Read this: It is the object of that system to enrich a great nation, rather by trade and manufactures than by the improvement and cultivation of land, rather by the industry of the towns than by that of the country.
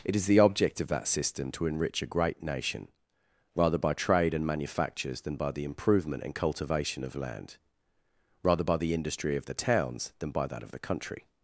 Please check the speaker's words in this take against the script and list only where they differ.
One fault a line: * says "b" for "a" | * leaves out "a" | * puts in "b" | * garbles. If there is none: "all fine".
all fine